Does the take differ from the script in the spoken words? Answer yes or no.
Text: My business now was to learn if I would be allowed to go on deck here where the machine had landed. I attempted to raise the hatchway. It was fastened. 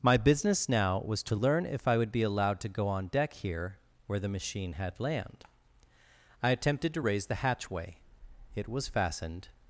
yes